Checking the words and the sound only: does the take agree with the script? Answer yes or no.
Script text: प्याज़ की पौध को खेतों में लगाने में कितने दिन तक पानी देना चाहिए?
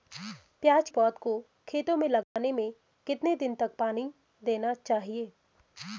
no